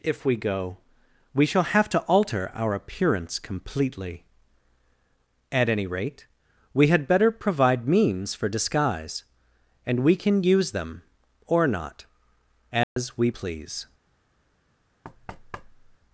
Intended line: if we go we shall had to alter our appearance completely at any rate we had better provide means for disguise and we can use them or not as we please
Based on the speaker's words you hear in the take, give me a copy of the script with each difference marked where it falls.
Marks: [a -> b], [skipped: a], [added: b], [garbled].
if we go we shall [had -> have] to alter our appearance completely at any rate we had better provide means for disguise and we can use them or not as we please